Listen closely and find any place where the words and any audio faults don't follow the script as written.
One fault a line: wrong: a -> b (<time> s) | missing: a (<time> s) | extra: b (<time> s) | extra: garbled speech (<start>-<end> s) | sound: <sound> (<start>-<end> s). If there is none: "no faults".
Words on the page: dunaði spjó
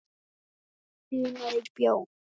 no faults